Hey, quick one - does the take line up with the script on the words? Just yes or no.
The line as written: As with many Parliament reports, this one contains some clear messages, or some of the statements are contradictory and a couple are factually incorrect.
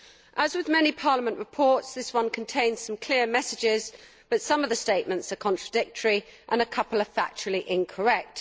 no